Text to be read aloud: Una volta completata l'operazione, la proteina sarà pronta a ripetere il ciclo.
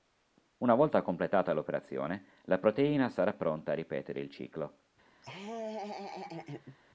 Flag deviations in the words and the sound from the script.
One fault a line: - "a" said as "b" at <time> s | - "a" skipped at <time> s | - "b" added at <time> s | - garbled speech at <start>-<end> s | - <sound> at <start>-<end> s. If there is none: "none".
- laugh at 5.2-6.8 s